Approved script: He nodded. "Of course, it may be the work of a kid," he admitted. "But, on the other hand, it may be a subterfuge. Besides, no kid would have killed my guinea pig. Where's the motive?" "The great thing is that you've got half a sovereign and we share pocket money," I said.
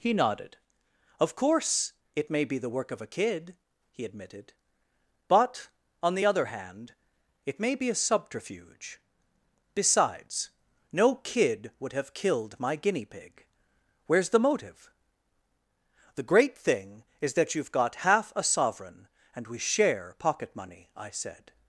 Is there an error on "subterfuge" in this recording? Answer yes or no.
no